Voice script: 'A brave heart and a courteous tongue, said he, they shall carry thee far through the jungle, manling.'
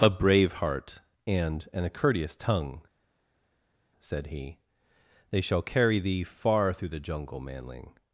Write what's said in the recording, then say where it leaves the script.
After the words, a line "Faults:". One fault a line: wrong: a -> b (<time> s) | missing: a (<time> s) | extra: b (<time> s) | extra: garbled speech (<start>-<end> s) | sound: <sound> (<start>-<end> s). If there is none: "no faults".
'A brave heart and and a courteous tongue, said he, they shall carry thee far through the jungle, manling.'
Faults:
extra: and (1.7 s)